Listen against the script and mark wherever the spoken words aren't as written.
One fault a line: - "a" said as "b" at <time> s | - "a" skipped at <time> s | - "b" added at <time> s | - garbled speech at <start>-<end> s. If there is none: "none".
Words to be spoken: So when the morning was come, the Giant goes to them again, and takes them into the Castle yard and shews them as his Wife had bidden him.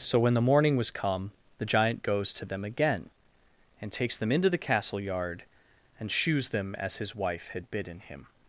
none